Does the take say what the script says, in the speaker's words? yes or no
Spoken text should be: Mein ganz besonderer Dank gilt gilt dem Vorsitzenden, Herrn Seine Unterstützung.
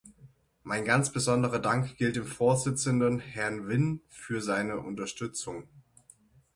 no